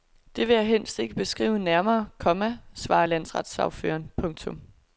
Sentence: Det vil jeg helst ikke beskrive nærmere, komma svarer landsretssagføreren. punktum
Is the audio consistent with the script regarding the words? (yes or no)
yes